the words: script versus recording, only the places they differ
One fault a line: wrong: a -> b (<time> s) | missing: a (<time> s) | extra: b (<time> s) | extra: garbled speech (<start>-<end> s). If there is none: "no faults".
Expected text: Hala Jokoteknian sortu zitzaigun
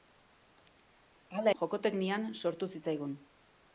no faults